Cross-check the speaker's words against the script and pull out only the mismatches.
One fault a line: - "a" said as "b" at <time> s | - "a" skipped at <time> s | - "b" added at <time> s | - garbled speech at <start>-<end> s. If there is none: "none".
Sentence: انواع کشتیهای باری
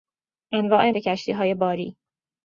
none